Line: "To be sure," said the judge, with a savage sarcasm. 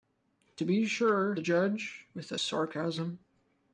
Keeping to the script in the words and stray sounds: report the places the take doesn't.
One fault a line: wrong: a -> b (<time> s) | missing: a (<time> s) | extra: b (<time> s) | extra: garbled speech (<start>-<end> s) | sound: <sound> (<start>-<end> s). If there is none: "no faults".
missing: said (1.4 s)
missing: savage (2.4 s)